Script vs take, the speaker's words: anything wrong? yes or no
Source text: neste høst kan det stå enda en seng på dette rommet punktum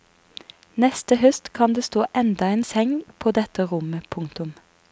no